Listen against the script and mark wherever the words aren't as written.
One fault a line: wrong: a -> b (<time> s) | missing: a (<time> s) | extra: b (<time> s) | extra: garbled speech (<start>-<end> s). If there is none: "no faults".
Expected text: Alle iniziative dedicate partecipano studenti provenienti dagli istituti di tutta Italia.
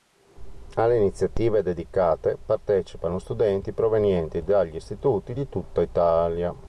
no faults